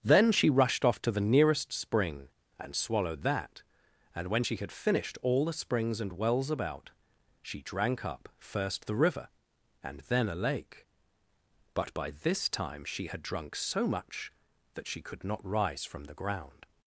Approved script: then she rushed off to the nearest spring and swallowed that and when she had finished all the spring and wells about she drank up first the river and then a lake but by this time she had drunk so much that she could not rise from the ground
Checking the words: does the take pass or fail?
fail